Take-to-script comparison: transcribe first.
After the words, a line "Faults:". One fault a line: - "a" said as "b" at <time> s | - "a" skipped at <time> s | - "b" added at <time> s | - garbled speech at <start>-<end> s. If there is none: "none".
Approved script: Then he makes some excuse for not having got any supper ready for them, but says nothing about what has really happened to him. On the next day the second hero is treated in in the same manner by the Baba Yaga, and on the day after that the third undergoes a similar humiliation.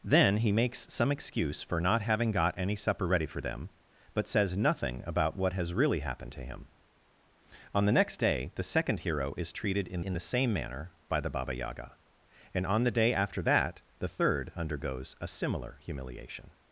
Then he makes some excuse for not having got any supper ready for them, but says nothing about what has really happened to him. On the next day the second hero is treated in in the same manner by the Baba Yaga, and on the day after that the third undergoes a similar humiliation.
Faults:
none